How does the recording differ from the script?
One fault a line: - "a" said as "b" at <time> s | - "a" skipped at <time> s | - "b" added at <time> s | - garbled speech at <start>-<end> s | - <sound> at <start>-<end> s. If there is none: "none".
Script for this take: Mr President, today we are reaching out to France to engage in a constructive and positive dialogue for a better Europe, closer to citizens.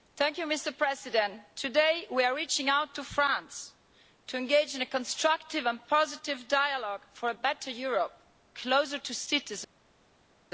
none